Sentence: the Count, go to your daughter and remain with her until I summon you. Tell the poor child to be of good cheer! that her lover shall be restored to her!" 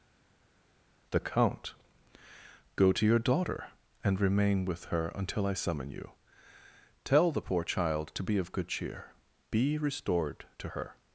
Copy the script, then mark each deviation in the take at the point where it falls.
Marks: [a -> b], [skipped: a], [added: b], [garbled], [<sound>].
the Count, go to your daughter and remain with her until I summon you. Tell the poor child to be of good cheer! [skipped: that her lover shall] be restored to her!"